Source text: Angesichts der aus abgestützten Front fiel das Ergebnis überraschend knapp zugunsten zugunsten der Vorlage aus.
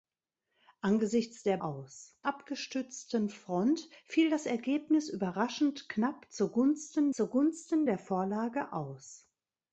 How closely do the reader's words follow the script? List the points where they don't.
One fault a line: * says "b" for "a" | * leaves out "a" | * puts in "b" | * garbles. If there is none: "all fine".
all fine